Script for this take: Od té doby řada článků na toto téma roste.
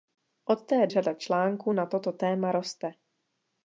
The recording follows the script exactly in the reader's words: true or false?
false